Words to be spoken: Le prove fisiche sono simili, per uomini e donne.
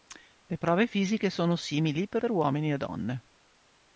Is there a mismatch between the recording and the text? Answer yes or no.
yes